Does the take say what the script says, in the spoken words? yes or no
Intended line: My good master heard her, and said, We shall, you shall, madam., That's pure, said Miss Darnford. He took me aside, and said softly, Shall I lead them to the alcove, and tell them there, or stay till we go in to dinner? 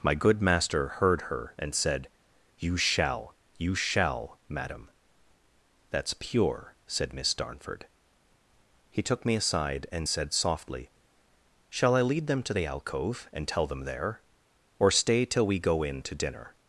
no